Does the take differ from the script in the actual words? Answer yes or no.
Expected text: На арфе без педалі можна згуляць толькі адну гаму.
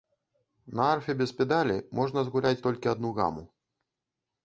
no